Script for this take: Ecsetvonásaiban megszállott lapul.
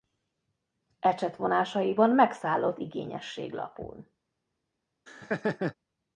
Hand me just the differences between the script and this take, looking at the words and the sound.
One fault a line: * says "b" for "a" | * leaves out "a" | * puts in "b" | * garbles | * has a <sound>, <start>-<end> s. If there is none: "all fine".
* puts in "igényesség"
* has a laugh, 5.1-5.7 s